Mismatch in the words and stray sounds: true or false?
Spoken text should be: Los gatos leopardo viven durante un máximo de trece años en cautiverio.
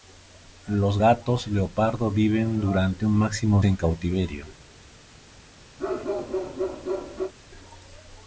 true